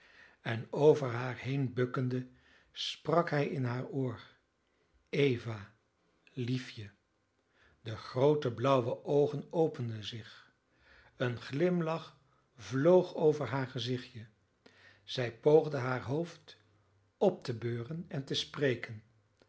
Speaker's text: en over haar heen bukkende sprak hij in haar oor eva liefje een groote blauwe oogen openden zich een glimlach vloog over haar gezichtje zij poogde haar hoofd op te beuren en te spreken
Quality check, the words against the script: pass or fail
fail